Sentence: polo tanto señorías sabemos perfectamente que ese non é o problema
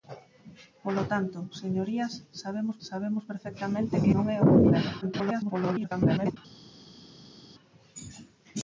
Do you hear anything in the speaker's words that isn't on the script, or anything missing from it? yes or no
yes